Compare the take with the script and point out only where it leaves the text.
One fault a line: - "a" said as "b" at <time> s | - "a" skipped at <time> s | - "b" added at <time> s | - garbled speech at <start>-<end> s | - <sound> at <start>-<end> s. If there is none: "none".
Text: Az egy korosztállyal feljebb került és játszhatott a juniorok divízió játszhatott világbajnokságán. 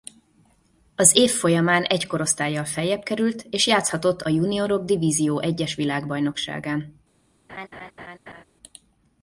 - "év folyamán" added at 1.1 s
- "játszhatott" said as "egyes" at 5.4 s
- laugh at 7.5-8.4 s